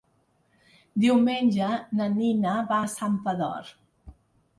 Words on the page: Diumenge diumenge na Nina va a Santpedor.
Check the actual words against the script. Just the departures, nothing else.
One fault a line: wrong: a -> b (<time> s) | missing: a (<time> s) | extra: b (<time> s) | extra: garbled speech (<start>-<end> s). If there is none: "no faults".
missing: diumenge (1.7 s)